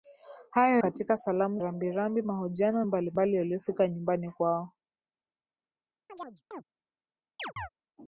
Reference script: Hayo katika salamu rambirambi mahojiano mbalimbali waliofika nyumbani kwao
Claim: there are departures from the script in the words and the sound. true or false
true